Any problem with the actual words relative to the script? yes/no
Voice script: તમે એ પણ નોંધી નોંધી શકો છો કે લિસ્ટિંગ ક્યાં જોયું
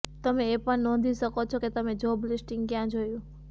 yes